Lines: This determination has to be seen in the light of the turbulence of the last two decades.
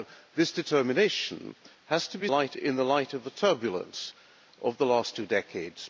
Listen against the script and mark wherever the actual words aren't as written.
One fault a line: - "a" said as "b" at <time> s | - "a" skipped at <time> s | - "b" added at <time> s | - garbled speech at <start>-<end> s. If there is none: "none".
- "seen" said as "light" at 2.3 s